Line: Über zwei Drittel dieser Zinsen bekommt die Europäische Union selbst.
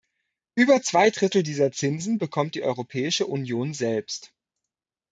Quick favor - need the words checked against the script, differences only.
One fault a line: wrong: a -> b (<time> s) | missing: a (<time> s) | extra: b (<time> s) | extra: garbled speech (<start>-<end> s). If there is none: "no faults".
no faults